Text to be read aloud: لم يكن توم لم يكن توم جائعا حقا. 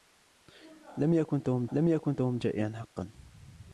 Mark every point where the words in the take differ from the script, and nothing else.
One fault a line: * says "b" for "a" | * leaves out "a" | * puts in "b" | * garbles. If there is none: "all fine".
all fine